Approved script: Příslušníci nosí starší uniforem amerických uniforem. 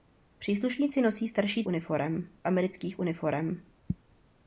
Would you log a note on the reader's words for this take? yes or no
no